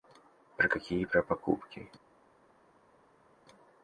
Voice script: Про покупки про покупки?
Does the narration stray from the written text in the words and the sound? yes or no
yes